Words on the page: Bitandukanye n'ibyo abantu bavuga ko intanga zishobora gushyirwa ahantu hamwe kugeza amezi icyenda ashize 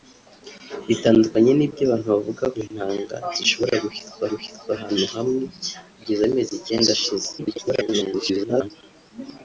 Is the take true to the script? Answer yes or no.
no